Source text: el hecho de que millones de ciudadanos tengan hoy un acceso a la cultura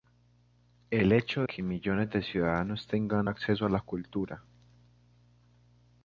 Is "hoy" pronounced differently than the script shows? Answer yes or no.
yes